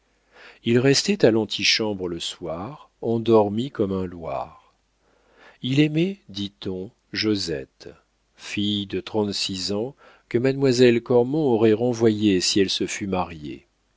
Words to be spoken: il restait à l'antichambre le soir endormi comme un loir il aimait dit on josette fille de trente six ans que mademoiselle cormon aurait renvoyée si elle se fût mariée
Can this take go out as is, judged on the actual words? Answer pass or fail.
pass